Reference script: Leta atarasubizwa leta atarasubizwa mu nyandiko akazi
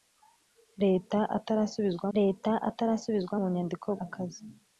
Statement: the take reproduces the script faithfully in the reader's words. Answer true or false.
true